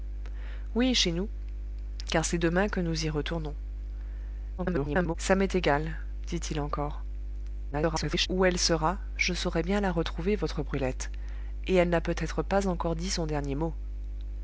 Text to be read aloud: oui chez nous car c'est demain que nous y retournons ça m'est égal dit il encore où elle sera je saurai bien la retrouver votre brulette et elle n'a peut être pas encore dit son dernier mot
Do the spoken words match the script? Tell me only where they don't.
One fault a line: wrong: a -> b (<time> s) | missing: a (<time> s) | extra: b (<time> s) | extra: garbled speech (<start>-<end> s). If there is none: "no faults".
extra: garbled speech (4.6-5.1 s)
extra: garbled speech (7.7-8.3 s)